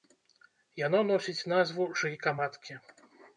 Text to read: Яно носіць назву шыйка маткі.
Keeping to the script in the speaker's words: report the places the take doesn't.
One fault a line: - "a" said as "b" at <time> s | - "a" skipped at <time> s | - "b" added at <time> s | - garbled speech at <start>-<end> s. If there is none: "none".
none